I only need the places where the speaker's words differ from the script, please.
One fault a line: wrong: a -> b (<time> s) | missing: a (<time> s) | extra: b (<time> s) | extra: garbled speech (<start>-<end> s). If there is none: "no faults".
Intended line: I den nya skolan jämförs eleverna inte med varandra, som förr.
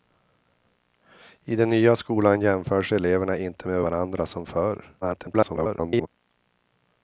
extra: garbled speech (5.0-6.1 s)